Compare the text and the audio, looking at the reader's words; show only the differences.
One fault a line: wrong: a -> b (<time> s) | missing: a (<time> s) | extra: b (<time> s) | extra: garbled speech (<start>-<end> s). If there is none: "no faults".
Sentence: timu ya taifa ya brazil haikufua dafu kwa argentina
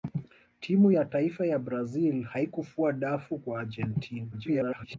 extra: garbled speech (4.3-5.0 s)